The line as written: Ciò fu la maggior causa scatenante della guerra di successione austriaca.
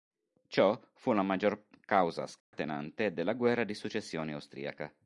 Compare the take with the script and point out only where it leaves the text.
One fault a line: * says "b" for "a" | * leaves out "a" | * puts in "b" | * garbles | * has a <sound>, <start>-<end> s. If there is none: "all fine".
* has a dropout, 2.4-2.5 s